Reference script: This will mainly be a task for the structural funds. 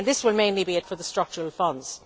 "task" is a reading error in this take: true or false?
true